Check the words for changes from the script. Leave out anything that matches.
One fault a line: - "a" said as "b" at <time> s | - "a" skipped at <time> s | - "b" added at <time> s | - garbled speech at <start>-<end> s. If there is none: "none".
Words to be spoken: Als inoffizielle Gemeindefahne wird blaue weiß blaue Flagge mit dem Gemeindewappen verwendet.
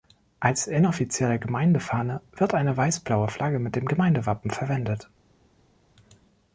- "blaue" said as "eine" at 2.5 s